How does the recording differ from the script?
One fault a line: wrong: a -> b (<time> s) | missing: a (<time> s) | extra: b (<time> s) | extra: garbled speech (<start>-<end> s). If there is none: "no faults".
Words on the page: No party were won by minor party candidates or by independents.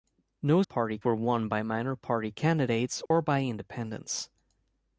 no faults